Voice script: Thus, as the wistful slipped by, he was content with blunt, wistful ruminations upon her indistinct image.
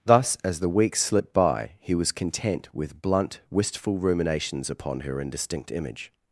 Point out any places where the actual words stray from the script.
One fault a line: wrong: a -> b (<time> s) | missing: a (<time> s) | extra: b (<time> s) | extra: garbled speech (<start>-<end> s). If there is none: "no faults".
wrong: wistful -> weeks (0.7 s)